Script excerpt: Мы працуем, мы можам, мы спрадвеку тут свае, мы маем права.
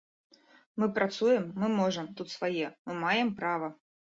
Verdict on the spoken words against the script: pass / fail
fail